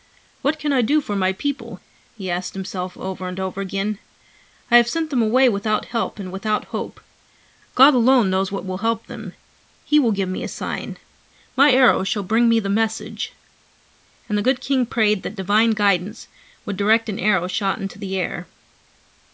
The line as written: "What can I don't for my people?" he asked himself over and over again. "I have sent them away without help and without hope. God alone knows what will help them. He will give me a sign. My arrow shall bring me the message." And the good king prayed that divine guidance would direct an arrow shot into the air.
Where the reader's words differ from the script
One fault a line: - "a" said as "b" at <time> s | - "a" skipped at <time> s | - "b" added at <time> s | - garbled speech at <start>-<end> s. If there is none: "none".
- "don't" said as "do" at 0.8 s